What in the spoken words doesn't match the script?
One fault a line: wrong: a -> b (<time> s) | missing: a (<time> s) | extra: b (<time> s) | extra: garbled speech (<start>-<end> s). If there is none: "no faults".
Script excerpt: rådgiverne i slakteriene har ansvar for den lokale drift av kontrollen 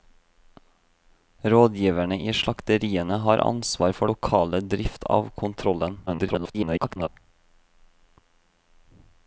missing: den (4.1 s)
extra: garbled speech (6.1-7.1 s)